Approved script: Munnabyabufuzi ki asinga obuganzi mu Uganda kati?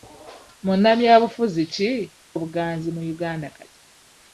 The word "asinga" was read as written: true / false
false